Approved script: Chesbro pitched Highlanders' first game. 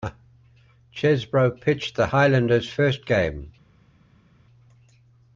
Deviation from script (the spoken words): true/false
true